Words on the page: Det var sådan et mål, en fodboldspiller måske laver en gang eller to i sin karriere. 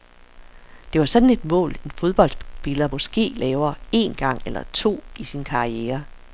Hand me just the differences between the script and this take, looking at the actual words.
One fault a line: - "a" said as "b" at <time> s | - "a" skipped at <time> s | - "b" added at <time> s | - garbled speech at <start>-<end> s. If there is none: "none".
none